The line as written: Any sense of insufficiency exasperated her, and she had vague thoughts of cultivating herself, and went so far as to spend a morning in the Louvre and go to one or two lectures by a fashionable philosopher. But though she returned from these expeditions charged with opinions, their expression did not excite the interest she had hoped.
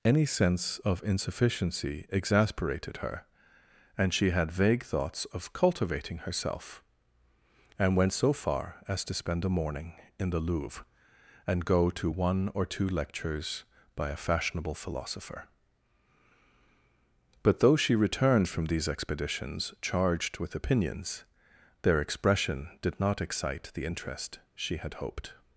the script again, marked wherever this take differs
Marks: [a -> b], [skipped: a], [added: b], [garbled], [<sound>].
Any sense of insufficiency exasperated her, and she had vague thoughts of cultivating herself, and went so far as to spend a morning in the Louvre and go to one or two lectures by a fashionable philosopher. But though she returned from these expeditions charged with opinions, their expression did not excite the interest she had hoped.